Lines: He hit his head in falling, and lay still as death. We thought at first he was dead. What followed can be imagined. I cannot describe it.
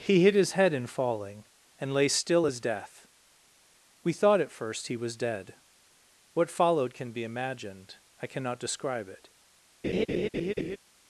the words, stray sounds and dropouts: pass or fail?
fail